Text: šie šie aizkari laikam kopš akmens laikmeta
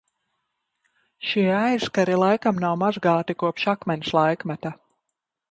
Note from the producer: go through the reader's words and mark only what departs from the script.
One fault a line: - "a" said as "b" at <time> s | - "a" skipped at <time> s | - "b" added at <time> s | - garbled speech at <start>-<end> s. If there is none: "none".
- "šie" skipped at 1.4 s
- "nav mazgāti" added at 2.6 s